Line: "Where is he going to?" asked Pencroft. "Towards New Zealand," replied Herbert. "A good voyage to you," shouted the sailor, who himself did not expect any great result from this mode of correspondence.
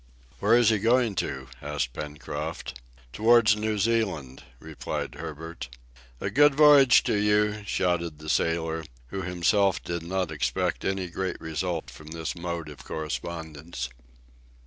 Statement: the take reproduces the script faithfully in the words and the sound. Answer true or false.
false